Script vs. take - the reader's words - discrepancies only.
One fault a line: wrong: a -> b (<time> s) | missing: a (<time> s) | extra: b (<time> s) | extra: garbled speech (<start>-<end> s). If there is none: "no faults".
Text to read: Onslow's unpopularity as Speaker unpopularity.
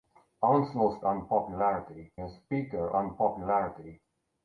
no faults